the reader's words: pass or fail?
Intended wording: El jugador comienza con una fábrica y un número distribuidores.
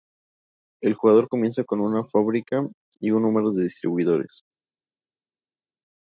fail